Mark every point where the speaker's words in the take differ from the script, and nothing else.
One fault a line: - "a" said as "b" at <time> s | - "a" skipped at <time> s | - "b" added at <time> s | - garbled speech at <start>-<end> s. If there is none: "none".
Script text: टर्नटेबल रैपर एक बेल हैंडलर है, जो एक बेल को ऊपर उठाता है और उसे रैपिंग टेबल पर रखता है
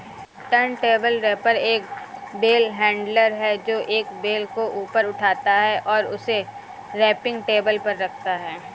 none